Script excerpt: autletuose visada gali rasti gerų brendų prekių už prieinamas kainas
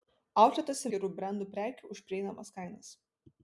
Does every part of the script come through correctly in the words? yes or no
no